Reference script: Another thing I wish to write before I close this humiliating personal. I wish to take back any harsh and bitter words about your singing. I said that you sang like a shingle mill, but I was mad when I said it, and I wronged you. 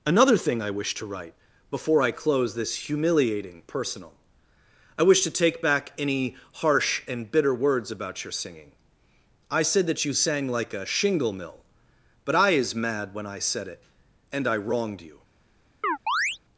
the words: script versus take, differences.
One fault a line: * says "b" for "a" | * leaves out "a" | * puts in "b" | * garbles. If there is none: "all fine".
* says "is" for "was"